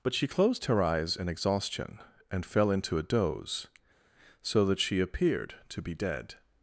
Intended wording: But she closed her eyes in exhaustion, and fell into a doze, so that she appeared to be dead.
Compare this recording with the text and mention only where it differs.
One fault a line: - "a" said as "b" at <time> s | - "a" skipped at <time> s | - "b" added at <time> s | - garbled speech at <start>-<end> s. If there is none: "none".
none